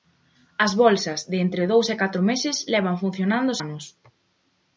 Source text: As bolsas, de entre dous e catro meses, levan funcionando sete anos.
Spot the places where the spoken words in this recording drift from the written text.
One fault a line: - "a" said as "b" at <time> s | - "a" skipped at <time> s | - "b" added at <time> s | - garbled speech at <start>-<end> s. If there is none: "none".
- "sete" skipped at 3.5 s